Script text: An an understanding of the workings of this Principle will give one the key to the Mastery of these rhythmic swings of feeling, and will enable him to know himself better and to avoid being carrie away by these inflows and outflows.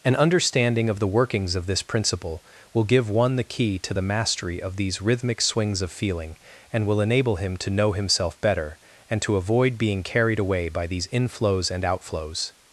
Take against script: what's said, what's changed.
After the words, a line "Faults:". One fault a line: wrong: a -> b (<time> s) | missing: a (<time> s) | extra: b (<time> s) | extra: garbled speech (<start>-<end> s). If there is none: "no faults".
An understanding of the workings of this Principle will give one the key to the Mastery of these rhythmic swings of feeling, and will enable him to know himself better and to avoid being carried away by these inflows and outflows.
Faults:
missing: an (0.1 s)
wrong: carrie -> carried (10.0 s)